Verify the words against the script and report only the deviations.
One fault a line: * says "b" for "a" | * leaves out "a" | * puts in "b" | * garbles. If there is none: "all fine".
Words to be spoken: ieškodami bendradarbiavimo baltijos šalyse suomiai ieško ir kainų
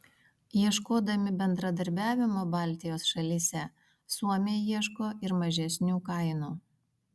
* puts in "mažesnių"